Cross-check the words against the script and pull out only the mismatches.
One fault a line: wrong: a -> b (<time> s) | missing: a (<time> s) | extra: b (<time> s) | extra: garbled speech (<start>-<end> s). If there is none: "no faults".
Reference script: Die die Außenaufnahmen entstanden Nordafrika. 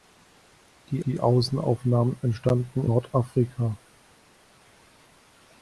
no faults